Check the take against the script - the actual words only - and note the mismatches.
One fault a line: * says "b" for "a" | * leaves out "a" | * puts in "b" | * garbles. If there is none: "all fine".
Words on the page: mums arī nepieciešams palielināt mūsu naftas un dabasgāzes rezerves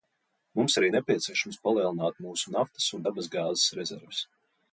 all fine